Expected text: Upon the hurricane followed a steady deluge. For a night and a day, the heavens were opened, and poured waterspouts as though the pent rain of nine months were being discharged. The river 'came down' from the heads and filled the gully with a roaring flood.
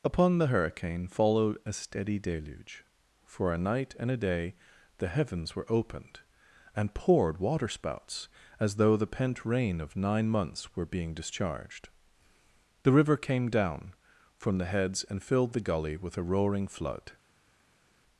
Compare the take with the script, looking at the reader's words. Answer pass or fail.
pass